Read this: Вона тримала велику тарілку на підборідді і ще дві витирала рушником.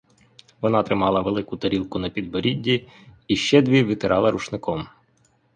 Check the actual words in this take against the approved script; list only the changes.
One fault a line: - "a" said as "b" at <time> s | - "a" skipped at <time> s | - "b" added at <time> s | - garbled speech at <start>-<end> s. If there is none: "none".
none